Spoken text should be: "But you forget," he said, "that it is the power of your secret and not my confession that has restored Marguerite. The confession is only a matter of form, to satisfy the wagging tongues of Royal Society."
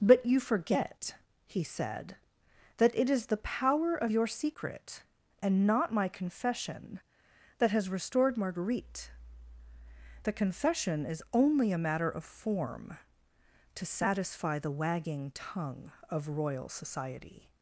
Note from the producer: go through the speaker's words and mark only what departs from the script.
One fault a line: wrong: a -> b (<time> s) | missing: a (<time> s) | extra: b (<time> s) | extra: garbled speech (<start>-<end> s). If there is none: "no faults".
wrong: tongues -> tongue (15.3 s)